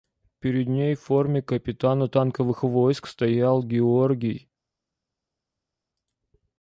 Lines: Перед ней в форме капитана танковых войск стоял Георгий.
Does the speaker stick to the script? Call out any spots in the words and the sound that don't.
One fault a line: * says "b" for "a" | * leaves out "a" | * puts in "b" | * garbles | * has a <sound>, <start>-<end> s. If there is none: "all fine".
all fine